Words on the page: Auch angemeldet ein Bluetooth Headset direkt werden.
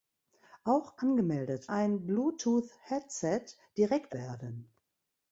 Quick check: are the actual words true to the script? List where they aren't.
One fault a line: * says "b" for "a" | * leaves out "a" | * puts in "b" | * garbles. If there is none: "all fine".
all fine